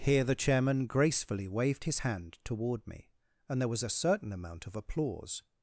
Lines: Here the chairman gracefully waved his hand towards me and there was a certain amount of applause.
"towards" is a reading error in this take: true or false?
true